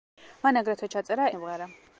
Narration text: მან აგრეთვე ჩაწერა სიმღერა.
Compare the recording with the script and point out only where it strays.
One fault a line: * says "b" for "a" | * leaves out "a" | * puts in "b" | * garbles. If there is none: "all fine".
all fine